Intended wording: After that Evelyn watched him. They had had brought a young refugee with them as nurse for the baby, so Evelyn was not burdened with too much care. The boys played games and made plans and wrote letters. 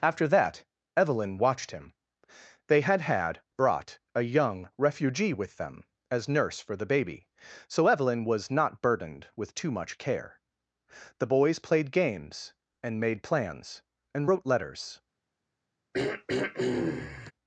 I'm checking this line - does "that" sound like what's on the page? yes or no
yes